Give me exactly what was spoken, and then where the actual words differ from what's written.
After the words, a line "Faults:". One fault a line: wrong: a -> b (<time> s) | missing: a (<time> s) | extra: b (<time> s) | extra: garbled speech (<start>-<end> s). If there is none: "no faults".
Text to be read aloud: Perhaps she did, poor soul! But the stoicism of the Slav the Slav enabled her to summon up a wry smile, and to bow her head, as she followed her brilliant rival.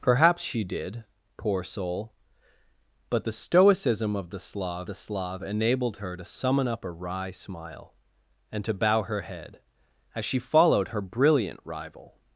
Perhaps she did, poor soul! But the stoicism of the Slav the Slav enabled her to summon up a wry smile, and to bow her head, as she followed her brilliant rival.
Faults:
no faults